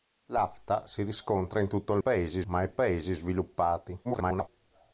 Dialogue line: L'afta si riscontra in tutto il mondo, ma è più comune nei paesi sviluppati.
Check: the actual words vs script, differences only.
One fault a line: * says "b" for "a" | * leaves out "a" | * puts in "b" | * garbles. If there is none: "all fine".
* says "paesi" for "mondo"
* leaves out "più comune nei"
* garbles